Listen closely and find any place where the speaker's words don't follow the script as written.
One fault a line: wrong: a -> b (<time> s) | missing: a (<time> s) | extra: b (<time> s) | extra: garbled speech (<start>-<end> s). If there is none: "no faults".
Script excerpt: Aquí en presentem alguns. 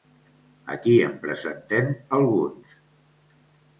no faults